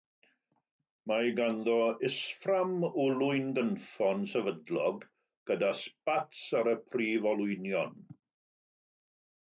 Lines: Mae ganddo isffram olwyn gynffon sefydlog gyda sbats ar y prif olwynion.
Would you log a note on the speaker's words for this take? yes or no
no